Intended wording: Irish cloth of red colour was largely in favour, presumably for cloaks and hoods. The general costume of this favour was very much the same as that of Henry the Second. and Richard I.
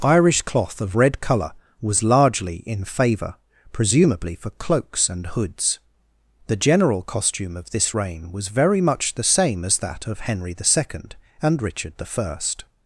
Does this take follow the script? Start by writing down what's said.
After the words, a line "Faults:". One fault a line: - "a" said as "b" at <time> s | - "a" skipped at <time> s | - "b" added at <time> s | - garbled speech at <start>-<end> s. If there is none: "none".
Irish cloth of red colour was largely in favour, presumably for cloaks and hoods. The general costume of this reign was very much the same as that of Henry the Second. and Richard I.
Faults:
- "favour" said as "reign" at 7.9 s